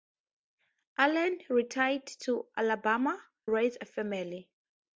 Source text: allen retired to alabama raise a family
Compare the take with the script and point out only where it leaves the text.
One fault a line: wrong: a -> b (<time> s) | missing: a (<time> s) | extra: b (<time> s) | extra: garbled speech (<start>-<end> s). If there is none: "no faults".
no faults